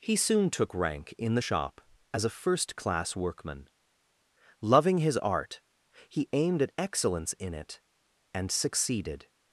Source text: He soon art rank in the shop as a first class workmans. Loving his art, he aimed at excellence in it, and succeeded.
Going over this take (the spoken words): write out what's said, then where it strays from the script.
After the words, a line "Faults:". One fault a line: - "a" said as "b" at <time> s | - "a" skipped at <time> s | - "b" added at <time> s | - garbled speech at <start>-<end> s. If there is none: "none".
He soon took rank in the shop as a first class workman. Loving his art, he aimed at excellence in it, and succeeded.
Faults:
- "art" said as "took" at 0.5 s
- "workmans" said as "workman" at 3.2 s